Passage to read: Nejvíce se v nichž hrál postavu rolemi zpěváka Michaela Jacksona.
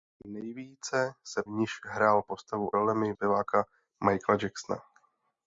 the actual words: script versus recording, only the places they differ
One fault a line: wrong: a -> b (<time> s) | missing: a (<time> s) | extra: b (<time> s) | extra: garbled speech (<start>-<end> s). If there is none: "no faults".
no faults